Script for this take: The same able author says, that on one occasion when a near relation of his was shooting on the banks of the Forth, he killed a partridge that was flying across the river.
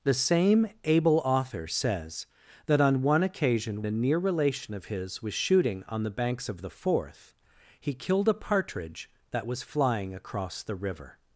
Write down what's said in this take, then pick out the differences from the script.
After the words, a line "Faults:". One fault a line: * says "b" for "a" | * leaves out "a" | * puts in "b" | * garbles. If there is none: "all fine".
The same able author says, that on one occasion a near relation of his was shooting on the banks of the Forth, he killed a partridge that was flying across the river.
Faults:
* leaves out "when"